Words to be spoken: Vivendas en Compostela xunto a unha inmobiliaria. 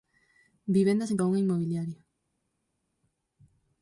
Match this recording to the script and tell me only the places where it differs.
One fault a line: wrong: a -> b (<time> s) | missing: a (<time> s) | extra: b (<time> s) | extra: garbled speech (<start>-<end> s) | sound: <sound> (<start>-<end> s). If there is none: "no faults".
missing: Compostela xunto (1.2 s)